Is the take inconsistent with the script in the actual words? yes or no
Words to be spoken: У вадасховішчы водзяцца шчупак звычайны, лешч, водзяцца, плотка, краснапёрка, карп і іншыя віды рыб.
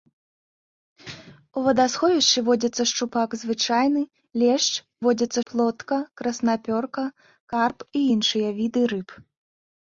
no